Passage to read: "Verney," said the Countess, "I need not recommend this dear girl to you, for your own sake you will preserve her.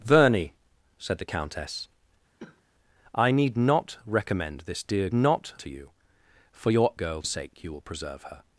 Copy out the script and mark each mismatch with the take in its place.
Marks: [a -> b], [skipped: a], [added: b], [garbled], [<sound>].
"Verney," said the Countess, [cough] "I need not recommend this dear [girl -> not] to you, for your [own -> girl] sake you will preserve her.